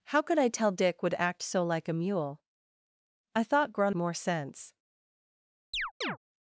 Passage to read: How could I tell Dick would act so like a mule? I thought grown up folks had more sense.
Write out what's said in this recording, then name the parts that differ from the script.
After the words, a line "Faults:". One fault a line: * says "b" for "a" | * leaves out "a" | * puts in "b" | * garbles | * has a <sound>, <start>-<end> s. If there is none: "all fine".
How could I tell Dick would act so like a mule? I thought grown more sense.
Faults:
* leaves out "up folks had"
* has a chirp, 5.7-6.2 s